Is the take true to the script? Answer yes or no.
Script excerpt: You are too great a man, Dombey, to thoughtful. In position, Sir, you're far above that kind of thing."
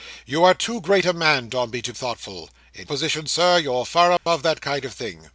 yes